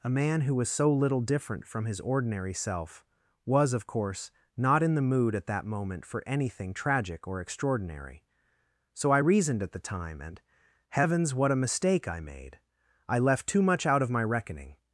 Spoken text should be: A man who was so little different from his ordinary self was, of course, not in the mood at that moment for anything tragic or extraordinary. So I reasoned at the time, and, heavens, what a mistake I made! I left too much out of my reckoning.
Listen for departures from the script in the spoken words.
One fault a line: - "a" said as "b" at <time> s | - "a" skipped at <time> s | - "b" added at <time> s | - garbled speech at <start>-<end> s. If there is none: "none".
none